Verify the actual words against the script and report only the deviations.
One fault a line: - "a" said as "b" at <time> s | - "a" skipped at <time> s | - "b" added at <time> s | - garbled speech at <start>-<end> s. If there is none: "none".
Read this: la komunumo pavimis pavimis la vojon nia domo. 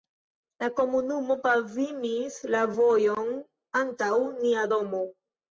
- "pavimis" skipped at 2.4 s
- "antaŭ" added at 3.8 s